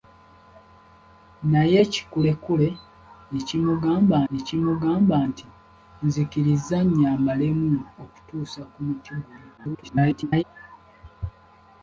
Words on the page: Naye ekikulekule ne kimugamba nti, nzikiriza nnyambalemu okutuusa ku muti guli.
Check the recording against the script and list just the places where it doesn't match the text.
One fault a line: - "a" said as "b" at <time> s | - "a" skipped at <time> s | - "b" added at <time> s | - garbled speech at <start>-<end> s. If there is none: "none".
- "ne kimugamba" added at 4.3 s
- garbled speech at 9.6-10.4 s